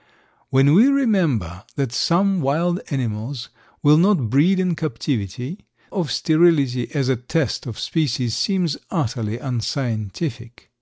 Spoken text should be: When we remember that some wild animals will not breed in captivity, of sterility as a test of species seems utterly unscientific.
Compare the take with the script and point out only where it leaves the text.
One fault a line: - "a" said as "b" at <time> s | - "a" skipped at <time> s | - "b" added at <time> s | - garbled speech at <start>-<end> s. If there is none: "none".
none